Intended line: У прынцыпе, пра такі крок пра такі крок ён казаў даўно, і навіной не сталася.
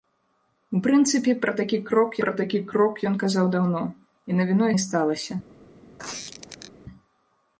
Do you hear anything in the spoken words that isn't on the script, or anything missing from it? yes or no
no